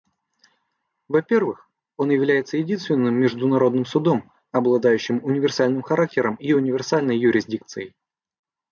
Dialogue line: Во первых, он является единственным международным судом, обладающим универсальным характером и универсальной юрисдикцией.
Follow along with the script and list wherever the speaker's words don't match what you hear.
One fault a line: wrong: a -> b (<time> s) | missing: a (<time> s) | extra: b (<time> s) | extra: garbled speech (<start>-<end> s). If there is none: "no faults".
no faults